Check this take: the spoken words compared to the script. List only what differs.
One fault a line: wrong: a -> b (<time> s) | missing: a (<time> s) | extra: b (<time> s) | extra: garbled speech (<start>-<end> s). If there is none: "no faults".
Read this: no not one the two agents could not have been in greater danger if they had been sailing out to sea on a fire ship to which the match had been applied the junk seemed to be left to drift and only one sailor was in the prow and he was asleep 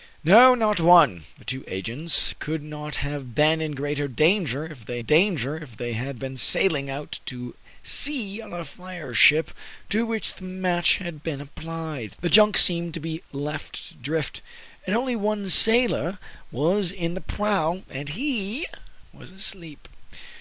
extra: danger if they (5.0 s)